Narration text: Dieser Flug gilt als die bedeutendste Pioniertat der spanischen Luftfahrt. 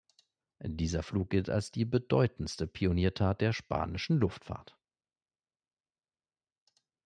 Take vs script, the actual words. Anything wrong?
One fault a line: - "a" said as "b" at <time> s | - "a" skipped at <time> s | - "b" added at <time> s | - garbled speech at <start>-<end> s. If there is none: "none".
none